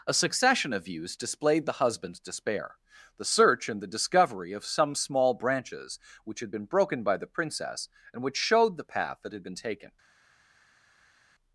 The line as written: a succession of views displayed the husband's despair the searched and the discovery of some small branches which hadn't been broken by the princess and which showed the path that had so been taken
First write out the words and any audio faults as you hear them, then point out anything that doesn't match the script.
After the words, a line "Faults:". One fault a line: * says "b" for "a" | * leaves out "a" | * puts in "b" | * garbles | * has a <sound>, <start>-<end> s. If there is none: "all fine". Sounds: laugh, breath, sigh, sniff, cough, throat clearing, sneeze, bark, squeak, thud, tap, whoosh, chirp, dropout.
a succession of views displayed the husband's despair the search and the discovery of some small branches which had been broken by the princess and which showed the path that had been taken
Faults:
* says "search" for "searched"
* says "had" for "hadn't"
* leaves out "so"